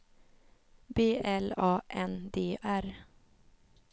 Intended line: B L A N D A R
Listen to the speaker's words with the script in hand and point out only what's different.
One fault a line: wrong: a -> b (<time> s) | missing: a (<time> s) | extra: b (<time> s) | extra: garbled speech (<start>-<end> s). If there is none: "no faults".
missing: A (2.6 s)